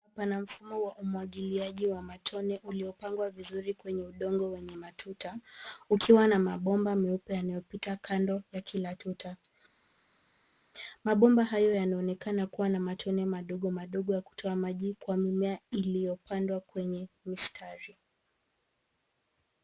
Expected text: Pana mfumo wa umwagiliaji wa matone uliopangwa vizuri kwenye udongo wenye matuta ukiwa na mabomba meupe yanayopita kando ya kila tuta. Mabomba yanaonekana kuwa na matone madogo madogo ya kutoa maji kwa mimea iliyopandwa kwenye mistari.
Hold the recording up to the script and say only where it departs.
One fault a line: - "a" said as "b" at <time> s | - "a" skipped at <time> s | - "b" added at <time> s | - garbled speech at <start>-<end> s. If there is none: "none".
- "hayo" added at 11.4 s